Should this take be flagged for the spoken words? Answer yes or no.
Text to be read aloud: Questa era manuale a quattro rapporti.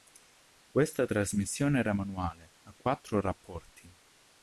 yes